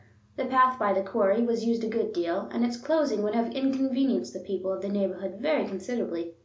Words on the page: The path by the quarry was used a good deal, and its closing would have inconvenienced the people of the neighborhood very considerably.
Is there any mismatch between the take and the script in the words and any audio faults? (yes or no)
no